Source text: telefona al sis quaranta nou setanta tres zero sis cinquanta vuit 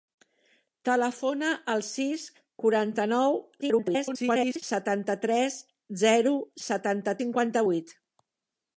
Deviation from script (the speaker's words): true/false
true